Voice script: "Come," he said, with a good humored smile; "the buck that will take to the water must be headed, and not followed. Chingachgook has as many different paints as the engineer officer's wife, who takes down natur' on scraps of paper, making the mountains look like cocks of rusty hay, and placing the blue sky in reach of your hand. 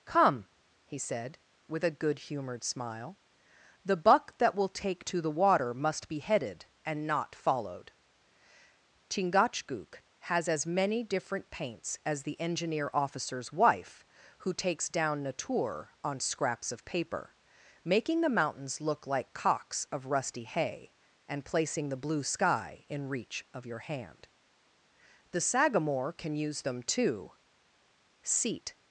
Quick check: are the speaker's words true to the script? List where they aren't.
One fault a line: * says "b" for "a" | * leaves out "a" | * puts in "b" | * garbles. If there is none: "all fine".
* puts in "The Sagamore can use them too Seat"